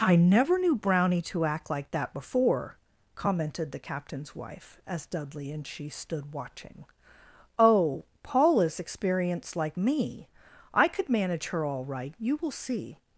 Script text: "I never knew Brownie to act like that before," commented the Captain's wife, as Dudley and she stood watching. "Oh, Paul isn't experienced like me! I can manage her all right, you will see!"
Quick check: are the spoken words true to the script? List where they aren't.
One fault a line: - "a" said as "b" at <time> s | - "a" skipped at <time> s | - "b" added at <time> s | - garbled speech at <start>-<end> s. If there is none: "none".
- "isn't" said as "is" at 8.6 s
- "can" said as "could" at 10.9 s